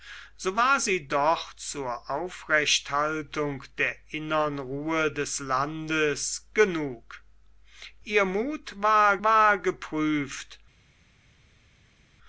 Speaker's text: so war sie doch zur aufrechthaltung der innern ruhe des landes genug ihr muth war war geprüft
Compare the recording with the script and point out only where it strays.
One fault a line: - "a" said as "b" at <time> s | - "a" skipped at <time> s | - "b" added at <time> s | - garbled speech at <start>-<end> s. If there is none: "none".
none